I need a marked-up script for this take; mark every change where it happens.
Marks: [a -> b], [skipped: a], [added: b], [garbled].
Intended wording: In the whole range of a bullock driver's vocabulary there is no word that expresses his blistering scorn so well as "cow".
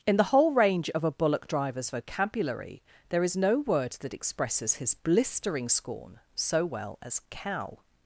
In the whole range of a bullock driver's vocabulary there is no word that expresses his blistering scorn so well as "cow".